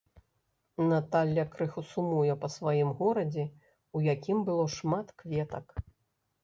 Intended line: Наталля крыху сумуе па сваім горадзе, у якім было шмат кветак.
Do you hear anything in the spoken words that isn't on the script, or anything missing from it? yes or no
no